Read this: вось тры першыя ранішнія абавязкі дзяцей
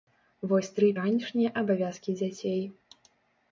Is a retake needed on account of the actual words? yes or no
yes